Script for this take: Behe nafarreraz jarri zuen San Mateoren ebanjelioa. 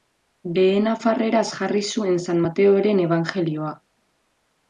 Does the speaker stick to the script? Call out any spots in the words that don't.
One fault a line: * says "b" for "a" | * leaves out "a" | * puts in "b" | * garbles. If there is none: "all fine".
all fine